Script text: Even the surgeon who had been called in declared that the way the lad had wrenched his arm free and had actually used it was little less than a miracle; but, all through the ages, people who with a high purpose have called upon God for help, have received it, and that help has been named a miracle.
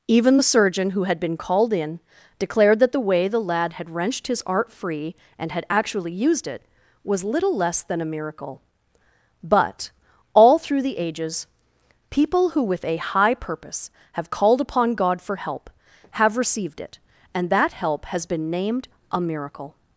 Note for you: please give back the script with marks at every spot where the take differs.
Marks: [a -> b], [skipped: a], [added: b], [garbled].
Even the surgeon who had been called in declared that the way the lad had wrenched his [arm -> art] free and had actually used it was little less than a miracle; but, all through the ages, people who with a high purpose have called upon God for help, have received it, and that help has been named a miracle.